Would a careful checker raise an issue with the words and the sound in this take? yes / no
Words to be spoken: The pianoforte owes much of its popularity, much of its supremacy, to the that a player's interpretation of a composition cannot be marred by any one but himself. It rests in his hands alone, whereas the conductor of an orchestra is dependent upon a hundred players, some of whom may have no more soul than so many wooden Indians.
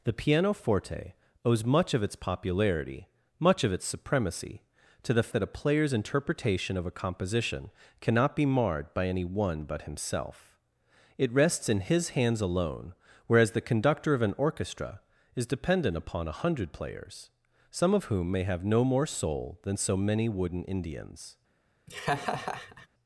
yes